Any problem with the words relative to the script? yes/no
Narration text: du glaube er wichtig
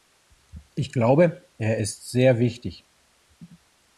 yes